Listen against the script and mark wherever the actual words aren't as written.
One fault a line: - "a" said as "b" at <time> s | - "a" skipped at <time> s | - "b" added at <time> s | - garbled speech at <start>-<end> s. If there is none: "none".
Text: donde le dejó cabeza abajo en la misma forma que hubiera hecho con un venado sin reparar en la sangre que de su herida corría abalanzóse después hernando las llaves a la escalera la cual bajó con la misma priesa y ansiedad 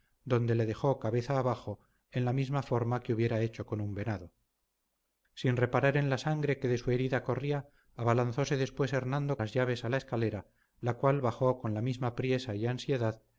none